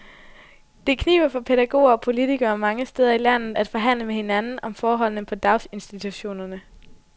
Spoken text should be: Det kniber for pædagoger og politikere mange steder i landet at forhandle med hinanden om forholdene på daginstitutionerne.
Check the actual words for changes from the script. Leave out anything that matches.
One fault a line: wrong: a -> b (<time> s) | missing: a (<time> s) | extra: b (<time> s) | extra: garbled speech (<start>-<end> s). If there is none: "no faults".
no faults